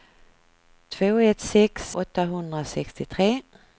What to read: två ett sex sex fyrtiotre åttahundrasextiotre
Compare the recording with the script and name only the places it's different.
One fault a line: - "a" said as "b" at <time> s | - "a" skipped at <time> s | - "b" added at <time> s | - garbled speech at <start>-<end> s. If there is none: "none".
- "sex fyrtiotre" skipped at 1.9 s